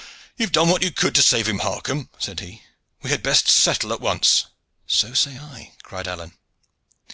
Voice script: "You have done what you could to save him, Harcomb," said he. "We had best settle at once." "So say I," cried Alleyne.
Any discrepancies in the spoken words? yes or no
no